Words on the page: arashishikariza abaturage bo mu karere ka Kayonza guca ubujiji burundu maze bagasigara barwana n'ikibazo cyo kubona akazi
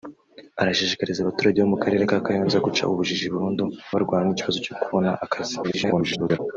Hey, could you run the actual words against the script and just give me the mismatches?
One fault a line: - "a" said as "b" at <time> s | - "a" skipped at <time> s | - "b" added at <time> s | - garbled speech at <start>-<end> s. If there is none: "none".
- "maze bagasigara" skipped at 3.6 s
- garbled speech at 5.6-6.4 s